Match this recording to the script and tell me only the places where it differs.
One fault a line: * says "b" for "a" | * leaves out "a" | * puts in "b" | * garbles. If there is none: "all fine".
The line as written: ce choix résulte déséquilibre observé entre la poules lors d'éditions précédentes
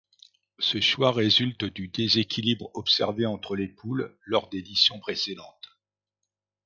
* puts in "du"
* says "les" for "la"